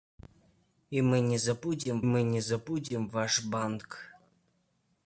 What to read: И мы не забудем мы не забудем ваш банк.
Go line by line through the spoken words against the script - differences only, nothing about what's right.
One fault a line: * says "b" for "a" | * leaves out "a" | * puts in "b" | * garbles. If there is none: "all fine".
all fine